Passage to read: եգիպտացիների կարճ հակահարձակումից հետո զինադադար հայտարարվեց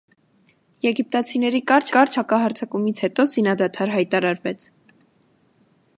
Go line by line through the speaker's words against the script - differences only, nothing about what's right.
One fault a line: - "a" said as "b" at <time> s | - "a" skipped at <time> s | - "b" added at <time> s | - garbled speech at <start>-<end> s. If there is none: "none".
- "կարճ" added at 2.0 s